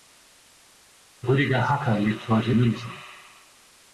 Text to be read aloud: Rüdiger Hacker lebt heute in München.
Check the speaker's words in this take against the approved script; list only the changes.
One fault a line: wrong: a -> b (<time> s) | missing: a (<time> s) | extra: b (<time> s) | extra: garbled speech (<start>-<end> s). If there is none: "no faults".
missing: in (2.5 s)